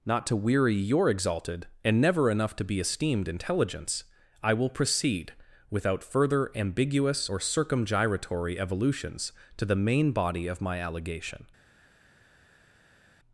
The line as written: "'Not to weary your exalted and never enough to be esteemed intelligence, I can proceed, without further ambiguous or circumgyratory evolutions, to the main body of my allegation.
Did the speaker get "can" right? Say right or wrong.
wrong